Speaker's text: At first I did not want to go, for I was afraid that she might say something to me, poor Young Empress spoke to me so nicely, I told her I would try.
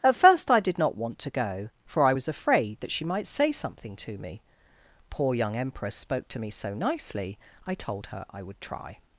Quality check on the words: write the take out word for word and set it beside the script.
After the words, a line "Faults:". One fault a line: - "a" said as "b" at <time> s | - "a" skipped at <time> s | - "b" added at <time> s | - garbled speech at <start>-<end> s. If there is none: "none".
At first I did not want to go, for I was afraid that she might say something to me, poor Young Empress spoke to me so nicely, I told her I would try.
Faults:
none